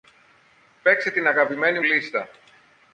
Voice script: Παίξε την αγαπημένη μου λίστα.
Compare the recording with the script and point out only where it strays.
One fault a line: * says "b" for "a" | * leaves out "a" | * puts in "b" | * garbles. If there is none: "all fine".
* leaves out "μου"